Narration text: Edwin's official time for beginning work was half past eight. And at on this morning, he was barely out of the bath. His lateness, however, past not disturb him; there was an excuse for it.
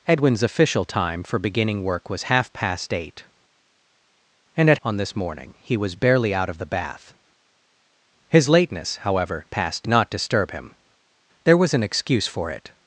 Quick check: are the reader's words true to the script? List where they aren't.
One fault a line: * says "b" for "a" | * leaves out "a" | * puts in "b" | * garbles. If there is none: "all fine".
all fine